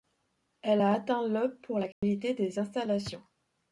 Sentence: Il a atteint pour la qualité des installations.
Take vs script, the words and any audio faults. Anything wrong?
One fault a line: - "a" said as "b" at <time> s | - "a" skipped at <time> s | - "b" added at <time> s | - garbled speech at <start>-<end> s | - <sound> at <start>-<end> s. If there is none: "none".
- "Il" said as "Elle" at 0.6 s
- "le" added at 1.3 s
- dropout at 1.9-2.0 s